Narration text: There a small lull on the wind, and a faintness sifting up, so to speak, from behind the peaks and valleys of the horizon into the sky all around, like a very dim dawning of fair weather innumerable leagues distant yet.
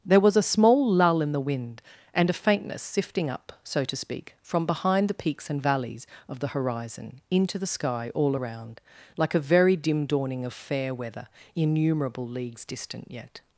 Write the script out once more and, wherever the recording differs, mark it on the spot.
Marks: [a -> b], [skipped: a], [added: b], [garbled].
There [added: was] a small lull [on -> in] the wind, and a faintness sifting up, so to speak, from behind the peaks and valleys of the horizon into the sky all around, like a very dim dawning of fair weather innumerable leagues distant yet.